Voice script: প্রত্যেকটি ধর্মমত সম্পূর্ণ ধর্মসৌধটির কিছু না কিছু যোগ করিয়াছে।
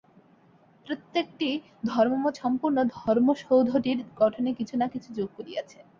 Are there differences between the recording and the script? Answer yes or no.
yes